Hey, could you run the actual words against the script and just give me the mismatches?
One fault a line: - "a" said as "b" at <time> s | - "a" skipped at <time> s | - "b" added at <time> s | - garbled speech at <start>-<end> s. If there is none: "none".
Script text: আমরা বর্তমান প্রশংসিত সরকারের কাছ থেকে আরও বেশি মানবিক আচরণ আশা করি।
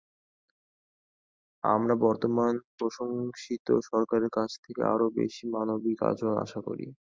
none